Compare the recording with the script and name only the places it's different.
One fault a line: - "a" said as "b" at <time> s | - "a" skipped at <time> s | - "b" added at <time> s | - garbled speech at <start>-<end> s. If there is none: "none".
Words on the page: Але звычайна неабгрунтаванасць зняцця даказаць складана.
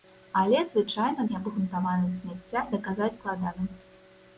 none